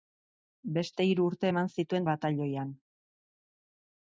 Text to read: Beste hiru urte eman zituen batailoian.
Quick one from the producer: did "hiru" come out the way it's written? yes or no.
yes